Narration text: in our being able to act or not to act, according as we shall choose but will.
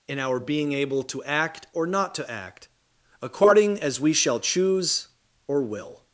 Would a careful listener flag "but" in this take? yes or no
yes